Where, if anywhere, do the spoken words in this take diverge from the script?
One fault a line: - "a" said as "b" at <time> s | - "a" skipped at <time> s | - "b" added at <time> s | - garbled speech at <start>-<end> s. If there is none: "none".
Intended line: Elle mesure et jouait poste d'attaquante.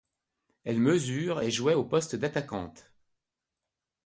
- "au" added at 1.7 s